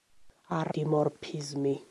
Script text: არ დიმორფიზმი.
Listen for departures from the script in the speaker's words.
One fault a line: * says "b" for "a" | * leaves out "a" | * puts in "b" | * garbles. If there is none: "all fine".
all fine